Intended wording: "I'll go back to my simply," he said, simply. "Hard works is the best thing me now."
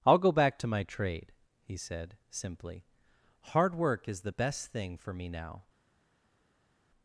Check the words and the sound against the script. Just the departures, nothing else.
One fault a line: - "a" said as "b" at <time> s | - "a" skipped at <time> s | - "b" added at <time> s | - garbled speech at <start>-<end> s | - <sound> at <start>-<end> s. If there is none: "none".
- "simply" said as "trade" at 0.8 s
- "works" said as "work" at 3.8 s
- "for" added at 5.0 s